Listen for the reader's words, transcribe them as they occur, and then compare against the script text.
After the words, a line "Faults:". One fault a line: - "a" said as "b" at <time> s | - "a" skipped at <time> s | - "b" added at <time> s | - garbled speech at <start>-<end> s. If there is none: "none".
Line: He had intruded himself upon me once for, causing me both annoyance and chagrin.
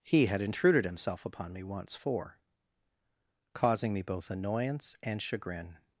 He had intruded himself upon me once for, causing me both annoyance and chagrin.
Faults:
none